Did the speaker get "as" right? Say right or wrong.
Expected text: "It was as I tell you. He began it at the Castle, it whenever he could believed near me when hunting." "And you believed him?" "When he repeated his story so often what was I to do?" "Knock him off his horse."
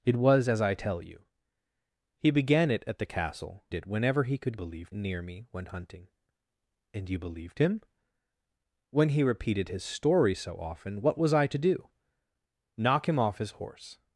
right